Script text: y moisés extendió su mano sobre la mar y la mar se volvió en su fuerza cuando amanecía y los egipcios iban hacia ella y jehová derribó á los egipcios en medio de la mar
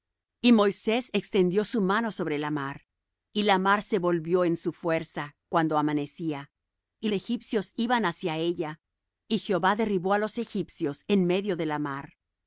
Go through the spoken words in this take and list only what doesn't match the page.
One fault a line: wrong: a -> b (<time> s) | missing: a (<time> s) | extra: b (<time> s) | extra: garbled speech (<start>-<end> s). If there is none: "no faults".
missing: los (7.1 s)